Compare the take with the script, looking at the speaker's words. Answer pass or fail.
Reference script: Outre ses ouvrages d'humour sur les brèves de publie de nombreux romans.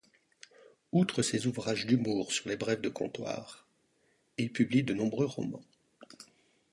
fail